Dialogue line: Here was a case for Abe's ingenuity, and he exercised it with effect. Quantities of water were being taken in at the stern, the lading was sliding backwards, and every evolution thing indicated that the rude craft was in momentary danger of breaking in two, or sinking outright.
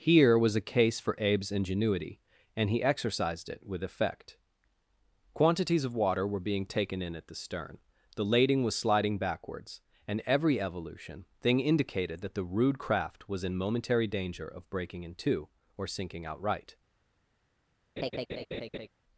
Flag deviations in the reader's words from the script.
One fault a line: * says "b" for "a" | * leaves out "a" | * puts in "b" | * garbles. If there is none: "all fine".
all fine